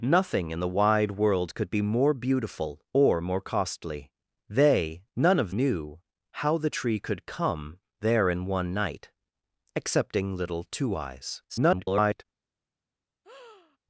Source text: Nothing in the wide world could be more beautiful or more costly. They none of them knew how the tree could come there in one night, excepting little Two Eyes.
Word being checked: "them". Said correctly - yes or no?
no